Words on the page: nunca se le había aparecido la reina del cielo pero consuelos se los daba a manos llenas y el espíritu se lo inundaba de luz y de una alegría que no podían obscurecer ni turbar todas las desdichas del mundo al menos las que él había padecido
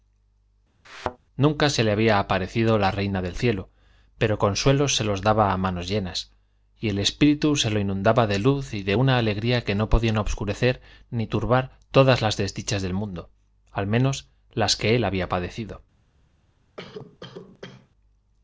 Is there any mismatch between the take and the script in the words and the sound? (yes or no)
yes